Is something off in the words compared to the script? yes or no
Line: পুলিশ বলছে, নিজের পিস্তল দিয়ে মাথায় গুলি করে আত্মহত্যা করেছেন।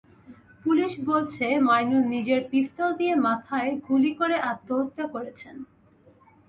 yes